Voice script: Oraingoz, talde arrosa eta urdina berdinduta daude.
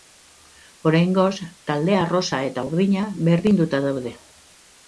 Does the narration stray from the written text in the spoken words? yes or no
no